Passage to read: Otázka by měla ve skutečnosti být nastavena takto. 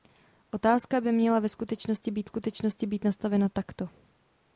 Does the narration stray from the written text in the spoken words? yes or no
yes